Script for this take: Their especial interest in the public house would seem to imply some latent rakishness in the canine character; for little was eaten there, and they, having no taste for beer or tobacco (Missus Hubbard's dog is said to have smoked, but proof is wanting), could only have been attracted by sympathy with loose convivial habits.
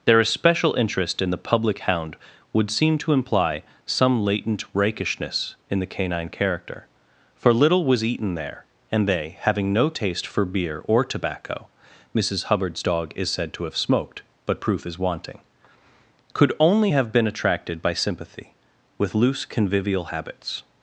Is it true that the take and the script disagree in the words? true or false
true